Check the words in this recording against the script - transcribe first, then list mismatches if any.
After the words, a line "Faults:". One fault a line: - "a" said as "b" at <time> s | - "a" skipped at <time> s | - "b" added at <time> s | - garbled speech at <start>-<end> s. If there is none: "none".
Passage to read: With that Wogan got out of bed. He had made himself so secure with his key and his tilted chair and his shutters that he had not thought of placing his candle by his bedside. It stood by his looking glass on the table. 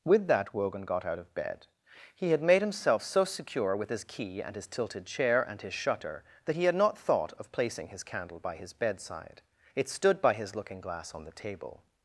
With that Wogan got out of bed. He had made himself so secure with his key and his tilted chair and his shutter that he had not thought of placing his candle by his bedside. It stood by his looking glass on the table.
Faults:
- "shutters" said as "shutter" at 5.7 s